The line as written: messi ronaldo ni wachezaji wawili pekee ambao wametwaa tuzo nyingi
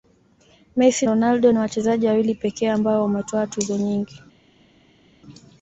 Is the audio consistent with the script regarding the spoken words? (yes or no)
yes